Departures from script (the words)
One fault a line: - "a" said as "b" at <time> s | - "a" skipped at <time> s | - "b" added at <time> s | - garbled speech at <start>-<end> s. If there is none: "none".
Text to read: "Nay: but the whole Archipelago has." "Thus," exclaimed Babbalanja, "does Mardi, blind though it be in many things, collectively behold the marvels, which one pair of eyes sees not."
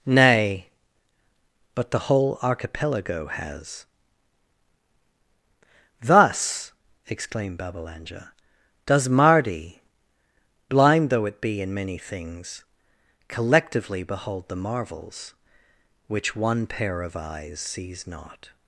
none